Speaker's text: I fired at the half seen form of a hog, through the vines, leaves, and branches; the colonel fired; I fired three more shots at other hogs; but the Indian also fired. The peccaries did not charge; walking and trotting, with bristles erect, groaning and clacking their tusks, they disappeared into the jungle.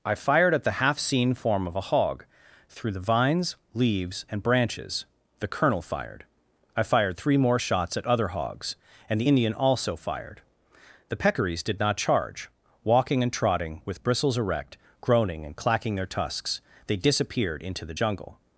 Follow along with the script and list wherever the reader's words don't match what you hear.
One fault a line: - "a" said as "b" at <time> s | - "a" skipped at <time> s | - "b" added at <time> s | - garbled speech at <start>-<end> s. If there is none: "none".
- "but" said as "and" at 9.1 s